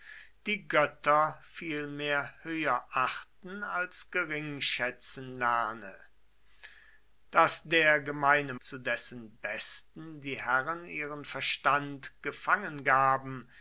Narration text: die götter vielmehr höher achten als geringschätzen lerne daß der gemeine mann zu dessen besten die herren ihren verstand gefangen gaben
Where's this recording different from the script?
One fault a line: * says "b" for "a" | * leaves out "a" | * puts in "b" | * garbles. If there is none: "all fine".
* leaves out "mann"